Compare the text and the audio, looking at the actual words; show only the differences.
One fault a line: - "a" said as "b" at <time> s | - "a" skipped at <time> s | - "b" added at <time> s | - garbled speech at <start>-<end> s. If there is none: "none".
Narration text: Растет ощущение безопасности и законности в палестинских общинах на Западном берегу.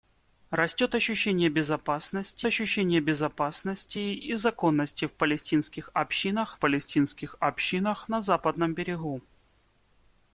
- "ощущение безопасности" added at 2.5 s
- "палестинских общинах" added at 6.5 s